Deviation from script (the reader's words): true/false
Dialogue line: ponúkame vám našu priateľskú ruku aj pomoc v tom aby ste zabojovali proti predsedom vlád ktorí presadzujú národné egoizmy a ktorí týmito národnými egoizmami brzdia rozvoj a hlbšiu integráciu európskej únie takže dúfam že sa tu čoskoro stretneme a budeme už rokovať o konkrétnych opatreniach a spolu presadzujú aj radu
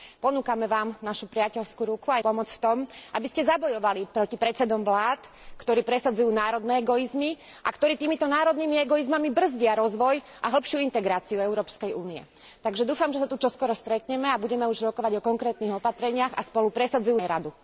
false